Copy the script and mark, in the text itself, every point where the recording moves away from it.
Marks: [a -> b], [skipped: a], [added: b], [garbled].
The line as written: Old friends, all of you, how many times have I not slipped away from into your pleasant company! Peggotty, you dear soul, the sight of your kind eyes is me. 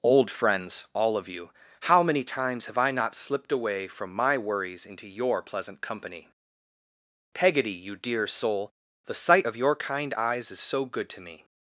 Old friends, all of you, how many times have I not slipped away from [added: my worries] into your pleasant company! Peggotty, you dear soul, the sight of your kind eyes is [added: so good to] me.